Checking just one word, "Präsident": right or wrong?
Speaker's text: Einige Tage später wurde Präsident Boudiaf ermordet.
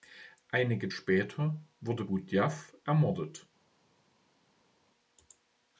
wrong